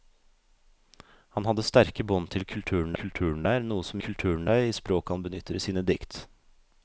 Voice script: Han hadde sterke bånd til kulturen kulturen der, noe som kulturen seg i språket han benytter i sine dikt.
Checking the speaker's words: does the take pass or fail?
pass